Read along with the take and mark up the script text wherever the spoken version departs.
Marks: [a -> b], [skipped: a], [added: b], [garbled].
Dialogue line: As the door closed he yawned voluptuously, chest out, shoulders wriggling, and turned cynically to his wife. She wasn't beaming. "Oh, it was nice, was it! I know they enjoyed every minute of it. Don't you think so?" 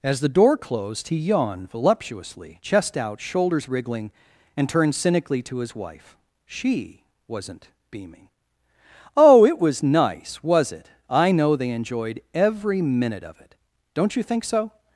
As the door closed he yawned voluptuously, chest out, shoulders wriggling, and turned cynically to his wife. She wasn't beaming. "Oh, it was nice, was it! I know they enjoyed every minute of it. Don't you think so?"